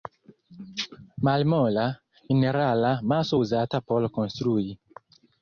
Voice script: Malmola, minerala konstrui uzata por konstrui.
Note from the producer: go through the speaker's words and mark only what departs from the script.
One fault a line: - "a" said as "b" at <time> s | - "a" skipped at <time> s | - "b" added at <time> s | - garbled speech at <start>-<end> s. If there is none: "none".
- "konstrui" said as "maso" at 3.1 s